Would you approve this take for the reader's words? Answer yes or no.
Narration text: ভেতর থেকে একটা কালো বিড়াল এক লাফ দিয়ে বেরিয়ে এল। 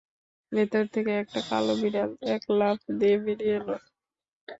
yes